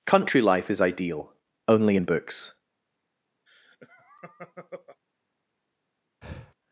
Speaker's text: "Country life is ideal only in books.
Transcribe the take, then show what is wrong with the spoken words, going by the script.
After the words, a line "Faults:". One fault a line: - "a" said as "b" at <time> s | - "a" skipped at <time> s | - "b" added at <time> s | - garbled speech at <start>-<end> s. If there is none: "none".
"Country life is ideal only in books.
Faults:
none